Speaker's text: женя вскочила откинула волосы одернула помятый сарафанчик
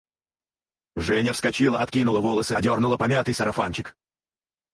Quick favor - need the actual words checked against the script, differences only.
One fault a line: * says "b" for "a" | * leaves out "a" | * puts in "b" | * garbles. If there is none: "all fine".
all fine